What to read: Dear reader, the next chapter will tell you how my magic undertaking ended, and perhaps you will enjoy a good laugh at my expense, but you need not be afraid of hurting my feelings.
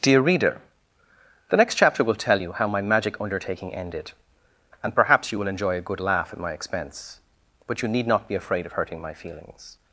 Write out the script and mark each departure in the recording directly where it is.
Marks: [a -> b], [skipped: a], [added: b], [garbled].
Dear reader, the next chapter will tell you how my magic undertaking ended, and perhaps you will enjoy a good laugh at my expense, but you need not be afraid of hurting my feelings.